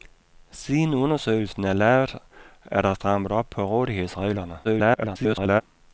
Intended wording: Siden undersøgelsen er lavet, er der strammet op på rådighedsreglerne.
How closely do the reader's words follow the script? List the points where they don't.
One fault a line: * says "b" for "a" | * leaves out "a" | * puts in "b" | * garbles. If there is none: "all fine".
* garbles